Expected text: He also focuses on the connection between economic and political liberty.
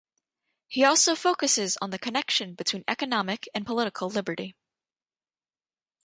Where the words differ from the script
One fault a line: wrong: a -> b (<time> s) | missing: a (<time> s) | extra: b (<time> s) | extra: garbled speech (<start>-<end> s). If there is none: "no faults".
no faults